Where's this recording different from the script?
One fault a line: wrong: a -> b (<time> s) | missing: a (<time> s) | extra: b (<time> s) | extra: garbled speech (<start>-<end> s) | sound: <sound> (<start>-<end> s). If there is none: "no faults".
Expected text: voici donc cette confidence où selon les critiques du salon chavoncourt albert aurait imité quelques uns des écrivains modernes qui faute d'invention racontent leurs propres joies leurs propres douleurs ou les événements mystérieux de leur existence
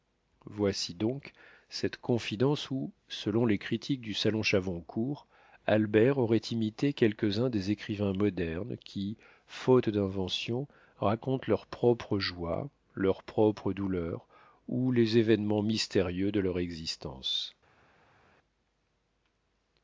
no faults